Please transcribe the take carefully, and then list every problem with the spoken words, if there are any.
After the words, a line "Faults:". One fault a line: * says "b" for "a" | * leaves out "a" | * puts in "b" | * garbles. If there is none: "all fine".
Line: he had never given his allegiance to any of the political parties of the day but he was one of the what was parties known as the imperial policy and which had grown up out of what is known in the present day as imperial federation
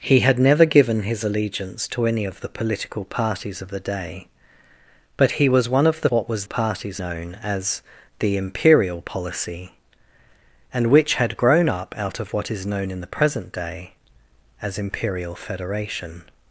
he had never given his allegiance to any of the political parties of the day but he was one of the what was parties known as the imperial policy and which had grown up out of what is known in the present day as imperial federation
Faults:
all fine